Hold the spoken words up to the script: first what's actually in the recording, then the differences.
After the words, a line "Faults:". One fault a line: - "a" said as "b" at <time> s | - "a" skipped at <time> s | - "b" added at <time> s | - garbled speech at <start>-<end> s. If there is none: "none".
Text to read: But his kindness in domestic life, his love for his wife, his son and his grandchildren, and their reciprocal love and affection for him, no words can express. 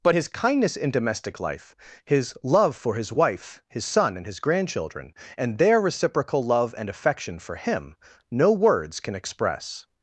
But his kindness in domestic life, his love for his wife, his son and his grandchildren, and their reciprocal love and affection for him, no words can express.
Faults:
none